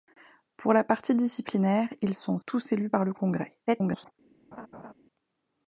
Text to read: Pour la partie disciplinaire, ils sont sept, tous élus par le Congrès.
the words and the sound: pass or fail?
fail